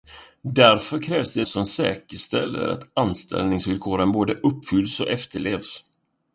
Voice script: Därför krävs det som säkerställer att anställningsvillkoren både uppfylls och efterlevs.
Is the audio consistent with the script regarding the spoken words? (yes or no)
yes